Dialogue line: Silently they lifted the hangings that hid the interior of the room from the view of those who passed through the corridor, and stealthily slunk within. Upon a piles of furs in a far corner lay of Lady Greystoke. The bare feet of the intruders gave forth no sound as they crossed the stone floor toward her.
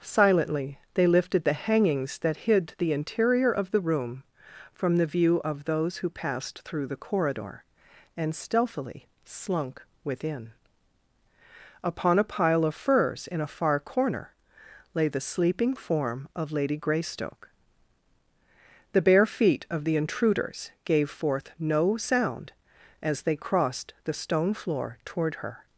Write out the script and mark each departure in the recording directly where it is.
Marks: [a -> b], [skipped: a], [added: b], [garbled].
Silently they lifted the hangings that hid the interior of the room from the view of those who passed through the corridor, and stealthily slunk within. Upon a [piles -> pile] of furs in a far corner lay [added: the sleeping form] of Lady Greystoke. The bare feet of the intruders gave forth no sound as they crossed the stone floor toward her.